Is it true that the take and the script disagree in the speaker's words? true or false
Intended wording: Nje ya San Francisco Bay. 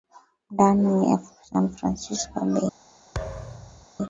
true